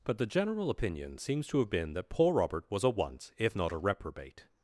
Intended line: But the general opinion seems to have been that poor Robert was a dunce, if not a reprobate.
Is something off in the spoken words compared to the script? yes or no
yes